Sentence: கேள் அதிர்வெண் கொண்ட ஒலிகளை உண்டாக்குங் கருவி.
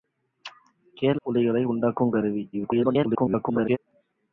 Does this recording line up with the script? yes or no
no